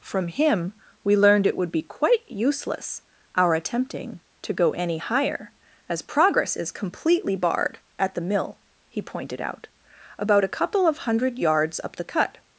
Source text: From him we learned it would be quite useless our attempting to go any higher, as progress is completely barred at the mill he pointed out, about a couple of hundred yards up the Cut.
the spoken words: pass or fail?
pass